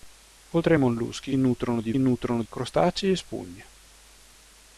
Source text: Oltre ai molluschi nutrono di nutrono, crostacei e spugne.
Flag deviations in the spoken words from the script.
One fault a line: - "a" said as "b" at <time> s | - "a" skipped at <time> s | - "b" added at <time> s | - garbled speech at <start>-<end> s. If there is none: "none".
none